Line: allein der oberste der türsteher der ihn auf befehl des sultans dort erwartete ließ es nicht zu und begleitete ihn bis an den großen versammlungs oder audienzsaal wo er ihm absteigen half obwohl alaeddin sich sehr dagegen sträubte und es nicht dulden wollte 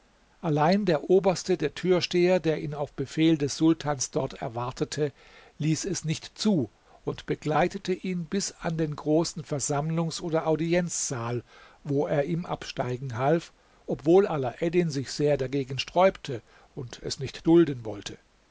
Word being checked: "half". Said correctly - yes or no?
yes